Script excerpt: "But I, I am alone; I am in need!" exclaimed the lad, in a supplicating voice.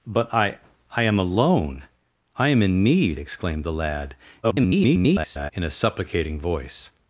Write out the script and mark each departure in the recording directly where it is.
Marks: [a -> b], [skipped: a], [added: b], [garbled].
"But I, I am alone; I am in need!" exclaimed the lad, [garbled] in a supplicating voice.